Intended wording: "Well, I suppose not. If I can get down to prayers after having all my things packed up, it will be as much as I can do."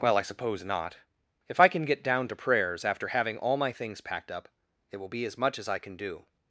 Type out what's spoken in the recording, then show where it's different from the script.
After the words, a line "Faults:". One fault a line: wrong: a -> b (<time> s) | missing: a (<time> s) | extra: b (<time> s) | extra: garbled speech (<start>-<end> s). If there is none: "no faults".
"Well, I suppose not. If I can get down to prayers after having all my things packed up, it will be as much as I can do."
Faults:
no faults